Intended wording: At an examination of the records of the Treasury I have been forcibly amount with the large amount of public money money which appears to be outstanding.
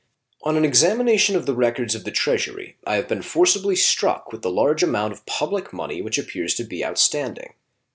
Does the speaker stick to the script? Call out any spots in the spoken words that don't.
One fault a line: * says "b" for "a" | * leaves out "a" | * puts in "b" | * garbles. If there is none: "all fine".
* says "On" for "At"
* says "struck" for "amount"
* leaves out "money"